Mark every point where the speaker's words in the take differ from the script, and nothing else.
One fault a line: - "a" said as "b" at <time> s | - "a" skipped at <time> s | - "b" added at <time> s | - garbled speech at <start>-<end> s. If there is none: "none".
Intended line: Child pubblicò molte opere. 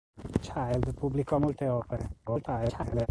- garbled speech at 2.2-3.1 s